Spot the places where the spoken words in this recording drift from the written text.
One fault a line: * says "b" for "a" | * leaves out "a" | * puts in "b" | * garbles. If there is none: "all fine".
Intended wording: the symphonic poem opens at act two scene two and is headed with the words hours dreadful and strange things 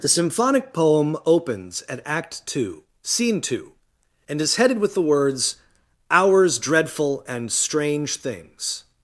all fine